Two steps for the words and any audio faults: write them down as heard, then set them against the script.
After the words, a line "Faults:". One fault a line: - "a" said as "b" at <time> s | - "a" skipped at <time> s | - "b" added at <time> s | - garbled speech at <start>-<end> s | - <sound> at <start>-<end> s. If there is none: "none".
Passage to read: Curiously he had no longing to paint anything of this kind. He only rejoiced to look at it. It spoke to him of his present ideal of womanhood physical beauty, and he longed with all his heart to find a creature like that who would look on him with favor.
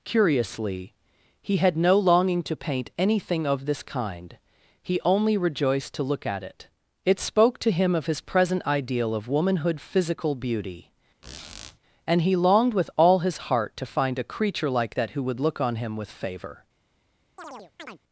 Curiously he had no longing to paint anything of this kind. He only rejoiced to look at it. It spoke to him of his present ideal of womanhood physical beauty, and he longed with all his heart to find a creature like that who would look on him with favor.
Faults:
- squeak at 11.2-11.8 s
- chirp at 17.4-18.0 s